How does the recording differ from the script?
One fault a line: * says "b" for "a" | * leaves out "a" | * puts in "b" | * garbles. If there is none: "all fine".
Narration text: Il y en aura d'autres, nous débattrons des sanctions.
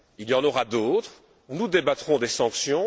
all fine